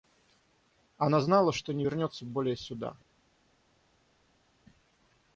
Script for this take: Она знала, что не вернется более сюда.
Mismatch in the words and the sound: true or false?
false